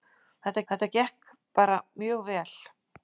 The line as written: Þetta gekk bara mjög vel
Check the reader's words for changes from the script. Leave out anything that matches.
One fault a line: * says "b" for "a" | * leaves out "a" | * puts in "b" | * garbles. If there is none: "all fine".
* puts in "þetta"